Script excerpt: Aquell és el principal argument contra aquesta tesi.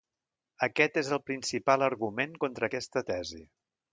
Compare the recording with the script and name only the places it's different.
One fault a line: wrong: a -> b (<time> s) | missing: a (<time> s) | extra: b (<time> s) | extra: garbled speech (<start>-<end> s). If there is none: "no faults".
wrong: Aquell -> Aquest (0.7 s)